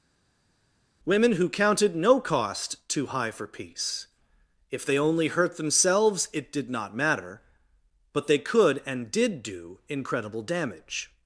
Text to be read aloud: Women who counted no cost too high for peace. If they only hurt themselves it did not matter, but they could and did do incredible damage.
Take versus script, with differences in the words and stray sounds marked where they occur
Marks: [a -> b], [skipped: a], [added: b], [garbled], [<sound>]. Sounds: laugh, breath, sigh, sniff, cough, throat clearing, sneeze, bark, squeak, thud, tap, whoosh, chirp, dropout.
Women who counted no cost too high for peace. If they only hurt themselves it did not matter, but they could and did do incredible damage.